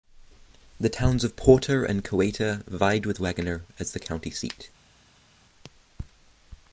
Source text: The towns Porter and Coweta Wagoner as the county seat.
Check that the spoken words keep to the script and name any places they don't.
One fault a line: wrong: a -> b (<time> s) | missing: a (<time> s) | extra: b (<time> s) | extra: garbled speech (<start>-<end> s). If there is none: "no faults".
extra: of (1.2 s)
extra: vied with (2.7 s)